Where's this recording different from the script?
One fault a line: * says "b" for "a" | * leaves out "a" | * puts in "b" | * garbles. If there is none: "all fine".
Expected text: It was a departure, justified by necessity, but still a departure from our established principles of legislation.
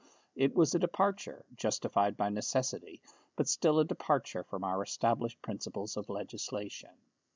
all fine